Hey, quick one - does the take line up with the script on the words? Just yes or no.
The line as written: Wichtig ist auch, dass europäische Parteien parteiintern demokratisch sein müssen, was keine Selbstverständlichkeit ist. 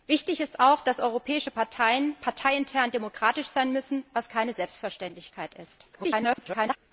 no